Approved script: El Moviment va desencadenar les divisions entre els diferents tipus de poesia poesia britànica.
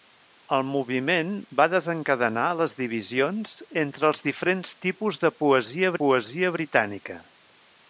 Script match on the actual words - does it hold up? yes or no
yes